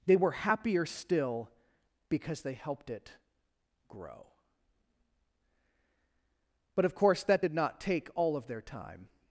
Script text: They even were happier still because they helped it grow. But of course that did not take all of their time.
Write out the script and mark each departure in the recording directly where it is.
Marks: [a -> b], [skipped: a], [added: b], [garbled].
They [skipped: even] were happier still because they helped it grow. But of course that did not take all of their time.